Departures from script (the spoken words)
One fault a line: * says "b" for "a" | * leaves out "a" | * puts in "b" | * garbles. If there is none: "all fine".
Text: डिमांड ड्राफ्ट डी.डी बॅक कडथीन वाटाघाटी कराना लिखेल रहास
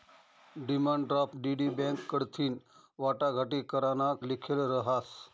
all fine